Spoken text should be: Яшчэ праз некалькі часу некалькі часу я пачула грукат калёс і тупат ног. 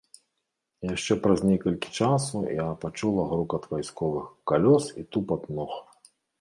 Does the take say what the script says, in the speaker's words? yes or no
no